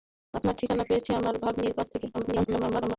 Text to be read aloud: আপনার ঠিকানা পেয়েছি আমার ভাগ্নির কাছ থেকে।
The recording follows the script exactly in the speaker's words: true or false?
false